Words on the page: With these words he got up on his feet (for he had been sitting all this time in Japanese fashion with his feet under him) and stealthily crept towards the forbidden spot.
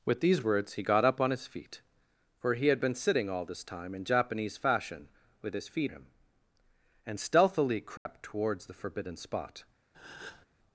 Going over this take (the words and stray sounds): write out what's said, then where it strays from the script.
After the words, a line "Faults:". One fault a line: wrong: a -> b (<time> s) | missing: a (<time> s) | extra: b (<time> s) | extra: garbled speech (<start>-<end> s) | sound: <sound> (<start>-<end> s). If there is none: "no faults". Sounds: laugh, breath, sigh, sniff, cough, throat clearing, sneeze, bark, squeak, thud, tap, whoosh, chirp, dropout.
With these words he got up on his feet (for he had been sitting all this time in Japanese fashion with his feet him) and stealthily crept towards the forbidden spot.
Faults:
missing: under (5.9 s)
sound: dropout (8.0-8.1 s)
sound: breath (9.9-10.5 s)